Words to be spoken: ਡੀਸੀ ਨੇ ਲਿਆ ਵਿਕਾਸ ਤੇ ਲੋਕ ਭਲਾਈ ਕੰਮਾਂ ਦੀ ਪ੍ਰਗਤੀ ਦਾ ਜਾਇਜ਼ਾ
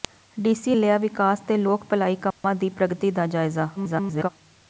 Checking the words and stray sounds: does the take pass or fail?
fail